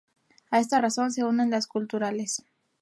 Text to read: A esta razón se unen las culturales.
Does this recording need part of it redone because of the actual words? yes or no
no